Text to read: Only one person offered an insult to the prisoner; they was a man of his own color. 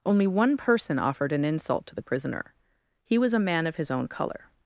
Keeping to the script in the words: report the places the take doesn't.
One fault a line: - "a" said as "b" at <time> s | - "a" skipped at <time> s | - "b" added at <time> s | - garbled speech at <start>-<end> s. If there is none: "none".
- "they" said as "he" at 3.0 s